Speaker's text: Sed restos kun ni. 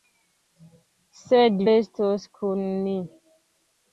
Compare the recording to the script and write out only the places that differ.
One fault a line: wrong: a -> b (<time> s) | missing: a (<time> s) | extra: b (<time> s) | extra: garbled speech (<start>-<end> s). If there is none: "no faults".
no faults